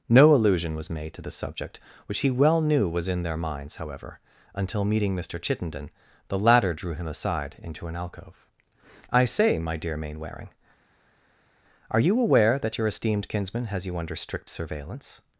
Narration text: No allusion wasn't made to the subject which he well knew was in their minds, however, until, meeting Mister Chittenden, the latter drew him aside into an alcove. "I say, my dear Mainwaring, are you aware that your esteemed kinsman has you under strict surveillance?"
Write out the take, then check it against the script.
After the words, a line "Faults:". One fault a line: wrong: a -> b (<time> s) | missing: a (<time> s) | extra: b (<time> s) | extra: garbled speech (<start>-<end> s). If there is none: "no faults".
No allusion was made to the subject which he well knew was in their minds, however, until, meeting Mister Chittenden, the latter drew him aside into an alcove. "I say, my dear Mainwaring, are you aware that your esteemed kinsman has you under strict surveillance?"
Faults:
wrong: wasn't -> was (0.8 s)